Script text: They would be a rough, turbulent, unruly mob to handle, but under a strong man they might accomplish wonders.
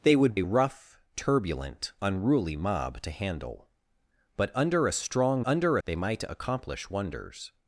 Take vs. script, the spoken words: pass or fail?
fail